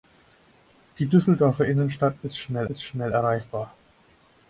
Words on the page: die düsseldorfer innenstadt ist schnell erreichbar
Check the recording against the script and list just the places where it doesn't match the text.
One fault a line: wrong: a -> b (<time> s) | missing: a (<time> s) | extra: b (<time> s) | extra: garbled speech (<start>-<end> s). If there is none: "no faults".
extra: ist schnell (2.7 s)